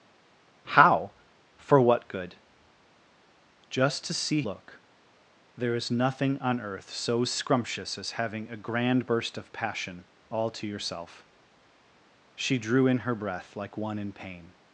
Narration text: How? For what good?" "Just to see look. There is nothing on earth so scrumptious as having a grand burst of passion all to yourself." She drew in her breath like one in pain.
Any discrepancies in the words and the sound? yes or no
no